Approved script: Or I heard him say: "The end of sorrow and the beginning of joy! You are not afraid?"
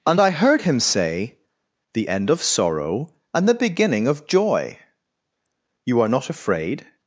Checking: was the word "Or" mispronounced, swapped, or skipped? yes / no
yes